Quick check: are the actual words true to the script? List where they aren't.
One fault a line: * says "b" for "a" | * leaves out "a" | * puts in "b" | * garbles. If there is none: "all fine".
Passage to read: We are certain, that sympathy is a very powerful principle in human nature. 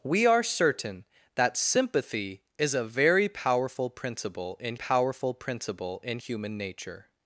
* puts in "powerful principle in"